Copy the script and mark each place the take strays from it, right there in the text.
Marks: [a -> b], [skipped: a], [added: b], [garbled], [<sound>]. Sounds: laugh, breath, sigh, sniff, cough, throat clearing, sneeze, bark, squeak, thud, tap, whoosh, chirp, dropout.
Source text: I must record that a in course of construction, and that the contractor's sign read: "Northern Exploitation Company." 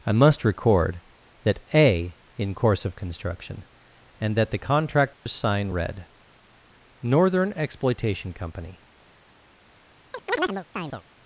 I must record that a in course of construction, and that the contractor's [dropout] sign read: "Northern Exploitation Company." [chirp]